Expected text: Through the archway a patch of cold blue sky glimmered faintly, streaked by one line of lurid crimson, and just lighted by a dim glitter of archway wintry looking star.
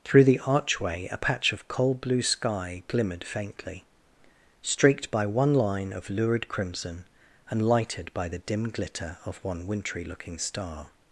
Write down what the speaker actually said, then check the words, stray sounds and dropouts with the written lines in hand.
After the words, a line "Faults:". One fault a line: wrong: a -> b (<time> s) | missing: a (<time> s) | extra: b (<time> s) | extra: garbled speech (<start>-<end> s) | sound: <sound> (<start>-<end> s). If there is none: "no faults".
Through the archway a patch of cold blue sky glimmered faintly, streaked by one line of lurid crimson, and lighted by the dim glitter of one wintry looking star.
Faults:
missing: just (7.7 s)
wrong: a -> the (8.3 s)
wrong: archway -> one (9.4 s)